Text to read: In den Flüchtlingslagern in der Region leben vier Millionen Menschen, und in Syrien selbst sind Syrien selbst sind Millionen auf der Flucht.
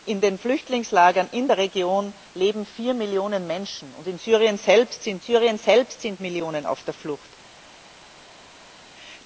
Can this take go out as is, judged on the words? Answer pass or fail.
pass